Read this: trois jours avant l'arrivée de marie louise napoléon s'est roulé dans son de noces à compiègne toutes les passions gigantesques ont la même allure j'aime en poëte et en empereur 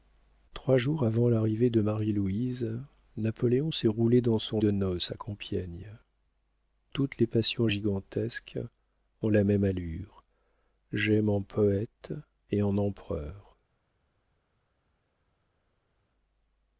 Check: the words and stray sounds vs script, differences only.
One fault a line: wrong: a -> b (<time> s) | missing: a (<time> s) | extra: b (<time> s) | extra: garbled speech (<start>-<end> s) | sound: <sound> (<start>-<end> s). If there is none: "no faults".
no faults